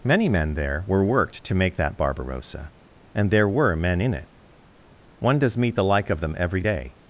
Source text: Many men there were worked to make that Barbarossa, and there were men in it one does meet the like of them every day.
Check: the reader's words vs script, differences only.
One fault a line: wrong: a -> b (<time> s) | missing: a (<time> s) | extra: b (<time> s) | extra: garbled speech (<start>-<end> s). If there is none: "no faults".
no faults